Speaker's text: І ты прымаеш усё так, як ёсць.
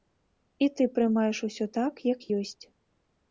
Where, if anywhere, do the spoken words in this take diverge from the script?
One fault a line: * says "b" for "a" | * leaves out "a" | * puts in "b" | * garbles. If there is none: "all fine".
all fine